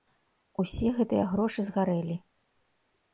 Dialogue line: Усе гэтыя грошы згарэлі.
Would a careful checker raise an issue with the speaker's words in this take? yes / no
no